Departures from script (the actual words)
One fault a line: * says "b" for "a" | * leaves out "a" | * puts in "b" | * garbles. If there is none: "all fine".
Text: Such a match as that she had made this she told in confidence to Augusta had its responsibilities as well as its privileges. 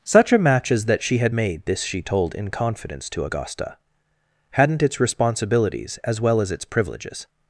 * says "hadn't" for "had"